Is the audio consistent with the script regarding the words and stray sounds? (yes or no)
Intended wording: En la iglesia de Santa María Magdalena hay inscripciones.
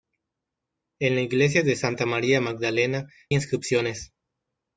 no